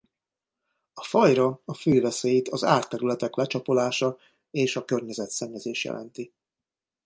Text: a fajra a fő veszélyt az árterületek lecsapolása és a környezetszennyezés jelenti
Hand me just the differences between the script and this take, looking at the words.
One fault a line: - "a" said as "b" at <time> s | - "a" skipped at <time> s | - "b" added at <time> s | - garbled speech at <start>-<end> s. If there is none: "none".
none